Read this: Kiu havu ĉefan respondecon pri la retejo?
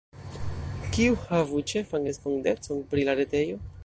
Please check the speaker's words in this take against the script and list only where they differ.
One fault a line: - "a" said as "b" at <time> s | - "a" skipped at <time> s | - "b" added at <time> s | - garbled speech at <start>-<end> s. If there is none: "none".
none